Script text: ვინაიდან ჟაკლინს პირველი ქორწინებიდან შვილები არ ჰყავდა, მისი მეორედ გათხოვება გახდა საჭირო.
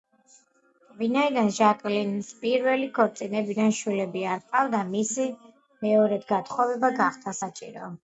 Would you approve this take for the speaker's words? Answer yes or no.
yes